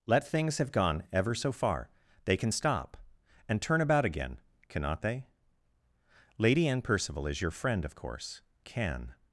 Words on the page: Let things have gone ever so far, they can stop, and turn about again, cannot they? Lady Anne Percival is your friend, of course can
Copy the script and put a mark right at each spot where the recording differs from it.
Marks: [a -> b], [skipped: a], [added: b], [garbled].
Let things have gone ever so far, they can stop, and turn about again, cannot they? Lady Anne Percival is your friend, of course can